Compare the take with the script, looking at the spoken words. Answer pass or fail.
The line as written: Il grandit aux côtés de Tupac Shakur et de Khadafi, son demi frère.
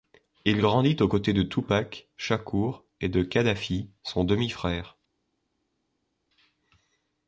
pass